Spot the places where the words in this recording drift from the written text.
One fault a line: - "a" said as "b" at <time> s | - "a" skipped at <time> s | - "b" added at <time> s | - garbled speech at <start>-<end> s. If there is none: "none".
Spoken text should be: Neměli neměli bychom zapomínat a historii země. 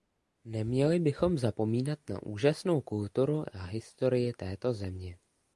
- "neměli" skipped at 1.0 s
- "na úžasnou kulturu" added at 2.1 s
- "této" added at 4.3 s